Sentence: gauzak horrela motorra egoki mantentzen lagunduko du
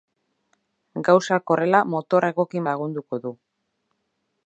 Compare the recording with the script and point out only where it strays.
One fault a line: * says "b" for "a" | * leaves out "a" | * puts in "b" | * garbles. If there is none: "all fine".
* leaves out "mantentzen"